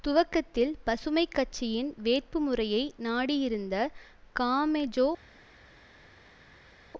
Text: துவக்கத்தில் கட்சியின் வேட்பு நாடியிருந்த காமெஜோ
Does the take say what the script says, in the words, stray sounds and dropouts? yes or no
no